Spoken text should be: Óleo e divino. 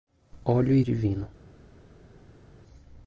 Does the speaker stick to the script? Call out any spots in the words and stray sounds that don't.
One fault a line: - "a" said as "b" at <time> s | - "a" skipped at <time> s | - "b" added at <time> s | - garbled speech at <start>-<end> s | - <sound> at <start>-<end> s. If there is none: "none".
none